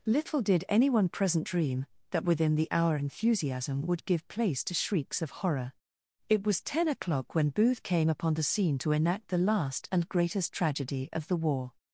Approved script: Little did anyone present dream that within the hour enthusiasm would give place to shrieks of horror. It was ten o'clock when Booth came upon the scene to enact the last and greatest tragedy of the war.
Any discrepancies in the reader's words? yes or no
no